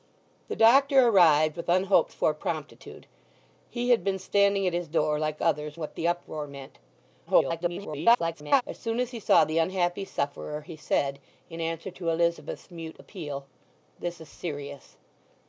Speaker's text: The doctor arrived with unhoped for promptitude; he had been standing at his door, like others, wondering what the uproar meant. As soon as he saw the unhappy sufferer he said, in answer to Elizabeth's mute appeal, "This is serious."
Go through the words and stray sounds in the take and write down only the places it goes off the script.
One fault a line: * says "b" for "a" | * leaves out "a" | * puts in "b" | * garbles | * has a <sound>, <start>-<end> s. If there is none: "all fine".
* leaves out "wondering"
* garbles